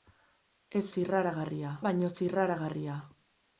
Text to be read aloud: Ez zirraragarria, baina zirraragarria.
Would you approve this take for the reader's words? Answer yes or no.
yes